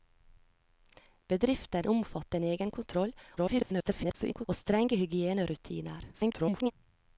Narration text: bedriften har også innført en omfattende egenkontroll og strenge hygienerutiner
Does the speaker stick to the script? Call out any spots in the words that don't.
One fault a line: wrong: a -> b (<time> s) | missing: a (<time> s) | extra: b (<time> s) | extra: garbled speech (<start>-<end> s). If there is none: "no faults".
missing: har også innført (1.9 s)
extra: garbled speech (3.4-4.5 s)
extra: garbled speech (6.1-6.7 s)